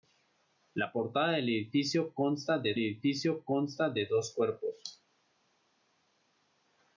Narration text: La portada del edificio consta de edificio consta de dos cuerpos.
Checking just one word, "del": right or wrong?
right